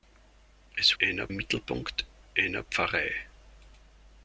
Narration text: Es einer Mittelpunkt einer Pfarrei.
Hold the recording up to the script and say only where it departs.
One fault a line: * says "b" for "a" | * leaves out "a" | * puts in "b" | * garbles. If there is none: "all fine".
all fine